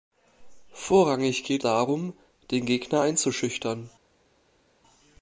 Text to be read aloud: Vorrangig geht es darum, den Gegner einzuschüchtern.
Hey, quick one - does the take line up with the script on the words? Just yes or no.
no